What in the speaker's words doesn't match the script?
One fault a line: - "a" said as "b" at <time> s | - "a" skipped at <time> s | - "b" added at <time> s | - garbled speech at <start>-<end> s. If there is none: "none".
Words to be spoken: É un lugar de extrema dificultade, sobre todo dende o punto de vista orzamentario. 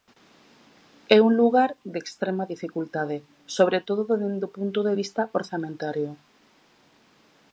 none